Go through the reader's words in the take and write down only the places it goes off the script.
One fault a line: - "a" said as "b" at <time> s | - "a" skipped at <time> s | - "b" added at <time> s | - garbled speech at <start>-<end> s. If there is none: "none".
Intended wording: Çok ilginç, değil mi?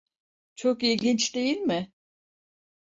none